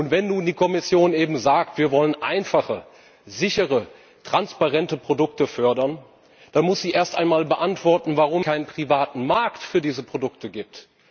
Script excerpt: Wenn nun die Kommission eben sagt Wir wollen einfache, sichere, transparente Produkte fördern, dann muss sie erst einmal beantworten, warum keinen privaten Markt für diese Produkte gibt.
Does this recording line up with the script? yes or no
yes